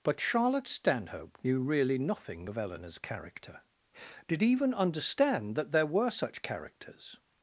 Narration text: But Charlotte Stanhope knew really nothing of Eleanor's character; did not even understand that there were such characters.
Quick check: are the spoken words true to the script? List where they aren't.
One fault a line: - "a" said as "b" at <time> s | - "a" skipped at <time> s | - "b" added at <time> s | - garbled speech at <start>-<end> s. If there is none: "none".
- "not" skipped at 4.4 s